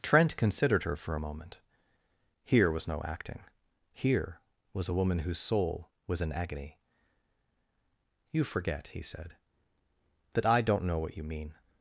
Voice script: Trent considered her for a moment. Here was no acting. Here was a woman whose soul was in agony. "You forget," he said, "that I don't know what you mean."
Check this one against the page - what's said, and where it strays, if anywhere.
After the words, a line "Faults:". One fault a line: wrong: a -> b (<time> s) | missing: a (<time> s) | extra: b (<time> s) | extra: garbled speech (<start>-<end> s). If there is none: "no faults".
Trent considered her for a moment. Here was no acting. Here was a woman whose soul was in agony. "You forget," he said, "that I don't know what you mean."
Faults:
no faults